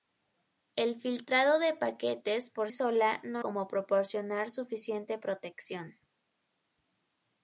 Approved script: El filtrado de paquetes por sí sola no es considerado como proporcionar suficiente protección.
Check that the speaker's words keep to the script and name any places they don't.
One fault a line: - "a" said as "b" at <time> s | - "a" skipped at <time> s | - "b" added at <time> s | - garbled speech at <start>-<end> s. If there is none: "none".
- "sí" skipped at 2.7 s
- "es considerado" skipped at 3.4 s